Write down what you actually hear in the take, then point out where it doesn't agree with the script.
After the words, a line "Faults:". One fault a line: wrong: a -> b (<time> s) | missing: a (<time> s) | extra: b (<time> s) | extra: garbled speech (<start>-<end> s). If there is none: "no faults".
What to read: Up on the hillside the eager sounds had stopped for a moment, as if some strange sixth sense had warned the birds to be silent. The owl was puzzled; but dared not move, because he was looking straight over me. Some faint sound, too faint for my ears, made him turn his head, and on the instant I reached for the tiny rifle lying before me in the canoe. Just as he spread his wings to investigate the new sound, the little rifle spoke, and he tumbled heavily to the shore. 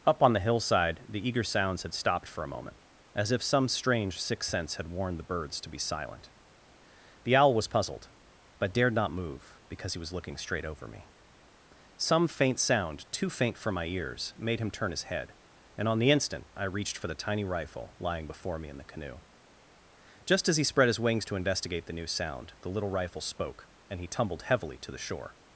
Up on the hillside the eager sounds had stopped for a moment, as if some strange sixth sense had warned the birds to be silent. The owl was puzzled; but dared not move, because he was looking straight over me. Some faint sound, too faint for my ears, made him turn his head, and on the instant I reached for the tiny rifle lying before me in the canoe. Just as he spread his wings to investigate the new sound, the little rifle spoke, and he tumbled heavily to the shore.
Faults:
no faults